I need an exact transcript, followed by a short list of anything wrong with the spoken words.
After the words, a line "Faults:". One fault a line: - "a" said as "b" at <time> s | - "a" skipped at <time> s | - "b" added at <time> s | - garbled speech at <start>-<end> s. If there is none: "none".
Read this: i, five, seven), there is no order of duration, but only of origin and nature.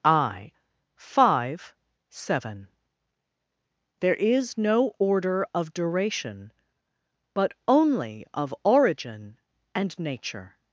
i, five, seven), there is no order of duration, but only of origin and nature.
Faults:
none